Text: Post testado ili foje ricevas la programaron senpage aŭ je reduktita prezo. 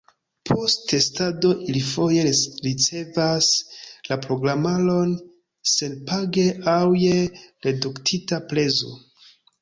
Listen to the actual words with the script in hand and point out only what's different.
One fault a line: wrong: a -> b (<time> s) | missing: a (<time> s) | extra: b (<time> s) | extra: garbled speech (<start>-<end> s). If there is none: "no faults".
no faults